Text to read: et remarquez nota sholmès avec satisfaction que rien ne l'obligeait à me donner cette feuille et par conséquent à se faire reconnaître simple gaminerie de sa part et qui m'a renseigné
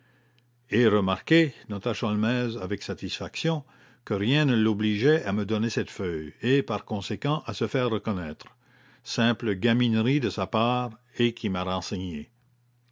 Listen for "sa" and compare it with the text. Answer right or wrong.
right